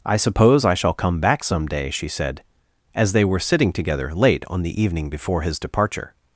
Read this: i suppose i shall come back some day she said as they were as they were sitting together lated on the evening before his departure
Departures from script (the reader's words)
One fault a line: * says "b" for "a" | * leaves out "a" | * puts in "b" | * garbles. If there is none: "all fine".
* leaves out "as they were"
* says "late" for "lated"